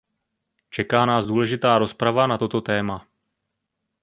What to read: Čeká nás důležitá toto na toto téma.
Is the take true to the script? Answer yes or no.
no